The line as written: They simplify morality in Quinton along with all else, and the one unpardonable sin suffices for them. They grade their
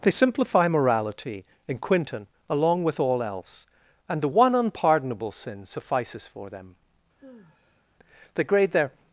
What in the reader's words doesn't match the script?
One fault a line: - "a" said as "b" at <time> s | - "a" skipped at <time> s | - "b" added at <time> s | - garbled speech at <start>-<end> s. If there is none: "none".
none